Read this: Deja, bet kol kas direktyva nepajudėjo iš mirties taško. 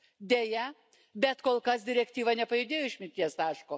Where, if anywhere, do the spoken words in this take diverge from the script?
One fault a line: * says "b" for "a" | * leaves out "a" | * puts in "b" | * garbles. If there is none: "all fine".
all fine